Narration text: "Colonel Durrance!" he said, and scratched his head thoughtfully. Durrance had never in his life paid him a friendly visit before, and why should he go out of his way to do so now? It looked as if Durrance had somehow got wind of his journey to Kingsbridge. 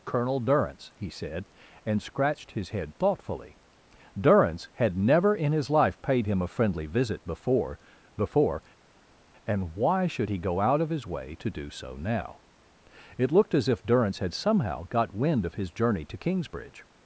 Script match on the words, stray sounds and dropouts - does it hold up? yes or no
no